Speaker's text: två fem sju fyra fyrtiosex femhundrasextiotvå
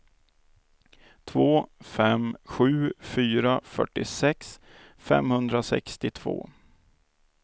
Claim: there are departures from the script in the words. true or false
false